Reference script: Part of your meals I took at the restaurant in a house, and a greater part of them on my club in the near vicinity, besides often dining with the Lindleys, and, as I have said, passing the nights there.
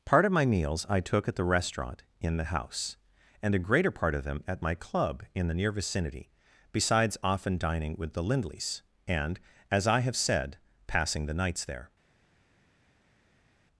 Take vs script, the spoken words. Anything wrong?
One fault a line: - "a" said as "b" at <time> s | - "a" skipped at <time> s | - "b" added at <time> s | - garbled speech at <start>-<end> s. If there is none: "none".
- "your" said as "my" at 0.3 s
- "a" said as "the" at 2.4 s
- "on" said as "at" at 4.5 s